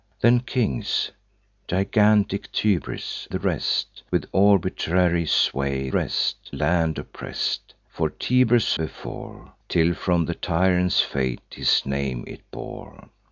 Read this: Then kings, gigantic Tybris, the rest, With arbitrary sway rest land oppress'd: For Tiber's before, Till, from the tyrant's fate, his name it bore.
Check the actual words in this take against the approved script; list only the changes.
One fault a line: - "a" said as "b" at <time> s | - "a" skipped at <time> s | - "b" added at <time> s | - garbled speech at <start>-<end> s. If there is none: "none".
none